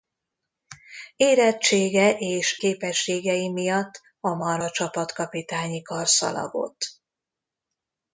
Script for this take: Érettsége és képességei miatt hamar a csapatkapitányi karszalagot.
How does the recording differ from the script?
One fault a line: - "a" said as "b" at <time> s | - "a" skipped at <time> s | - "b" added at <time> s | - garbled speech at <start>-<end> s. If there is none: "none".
none